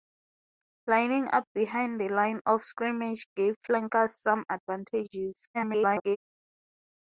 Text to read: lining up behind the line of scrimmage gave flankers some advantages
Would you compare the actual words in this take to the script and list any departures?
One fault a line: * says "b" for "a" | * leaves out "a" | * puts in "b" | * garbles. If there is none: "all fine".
* garbles